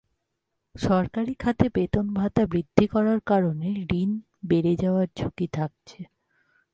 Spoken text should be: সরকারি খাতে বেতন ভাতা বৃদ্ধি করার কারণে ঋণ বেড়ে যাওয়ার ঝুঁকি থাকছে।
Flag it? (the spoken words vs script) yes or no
no